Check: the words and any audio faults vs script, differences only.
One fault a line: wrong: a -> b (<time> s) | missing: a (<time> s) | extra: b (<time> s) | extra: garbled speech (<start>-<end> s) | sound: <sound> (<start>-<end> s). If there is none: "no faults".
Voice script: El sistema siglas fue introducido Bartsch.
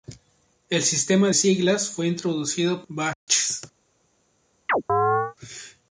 sound: dropout (3.1-3.3 s)
sound: chirp (4.7-5.3 s)